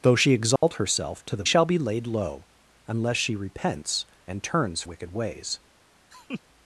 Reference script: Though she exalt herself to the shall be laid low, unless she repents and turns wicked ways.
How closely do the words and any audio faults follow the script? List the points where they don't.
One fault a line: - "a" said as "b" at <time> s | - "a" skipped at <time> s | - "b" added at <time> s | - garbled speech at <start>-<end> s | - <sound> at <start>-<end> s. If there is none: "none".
- dropout at 0.6-0.6 s
- laugh at 6.1-6.4 s